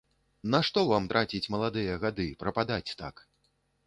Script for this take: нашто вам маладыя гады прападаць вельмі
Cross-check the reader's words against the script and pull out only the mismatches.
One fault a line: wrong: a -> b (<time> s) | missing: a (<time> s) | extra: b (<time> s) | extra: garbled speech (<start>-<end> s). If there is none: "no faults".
extra: траціць (1.1 s)
wrong: вельмі -> так (3.0 s)